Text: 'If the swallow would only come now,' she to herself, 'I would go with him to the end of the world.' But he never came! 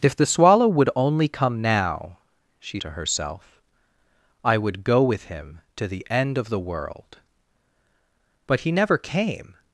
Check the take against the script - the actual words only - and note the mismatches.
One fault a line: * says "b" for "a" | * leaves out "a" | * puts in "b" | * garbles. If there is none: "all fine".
all fine